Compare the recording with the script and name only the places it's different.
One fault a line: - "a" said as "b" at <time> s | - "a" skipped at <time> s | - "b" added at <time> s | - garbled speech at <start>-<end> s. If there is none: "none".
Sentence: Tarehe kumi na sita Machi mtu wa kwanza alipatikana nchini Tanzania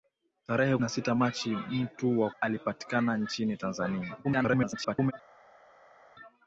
- "kumi" skipped at 0.8 s
- "kwanza" skipped at 2.3 s
- garbled speech at 4.2-5.1 s